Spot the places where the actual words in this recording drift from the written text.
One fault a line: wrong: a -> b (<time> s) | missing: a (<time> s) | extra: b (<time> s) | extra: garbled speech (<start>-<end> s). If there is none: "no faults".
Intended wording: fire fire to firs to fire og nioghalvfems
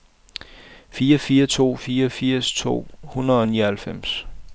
extra: fire (1.7 s)
wrong: fire -> hundrede (3.0 s)